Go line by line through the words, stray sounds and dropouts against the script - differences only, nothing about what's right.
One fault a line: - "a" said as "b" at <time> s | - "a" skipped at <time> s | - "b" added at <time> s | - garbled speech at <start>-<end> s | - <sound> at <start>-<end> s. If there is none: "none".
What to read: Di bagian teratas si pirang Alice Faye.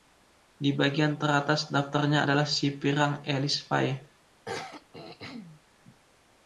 - "daftarnya adalah" added at 1.7 s
- throat clearing at 4.4-5.6 s